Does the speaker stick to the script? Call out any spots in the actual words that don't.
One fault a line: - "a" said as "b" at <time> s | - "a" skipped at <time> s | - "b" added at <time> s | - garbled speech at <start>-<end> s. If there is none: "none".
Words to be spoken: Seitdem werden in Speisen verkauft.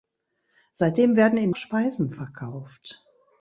none